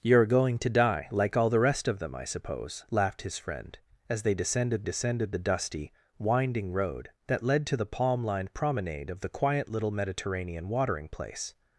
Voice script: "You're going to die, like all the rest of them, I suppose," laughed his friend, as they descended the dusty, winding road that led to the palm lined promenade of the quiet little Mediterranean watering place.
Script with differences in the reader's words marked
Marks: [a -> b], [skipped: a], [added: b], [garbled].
"You're going to die, like all the rest of them, I suppose," laughed his friend, as they descended [added: descended] the dusty, winding road that led to the palm lined promenade of the quiet little Mediterranean watering place.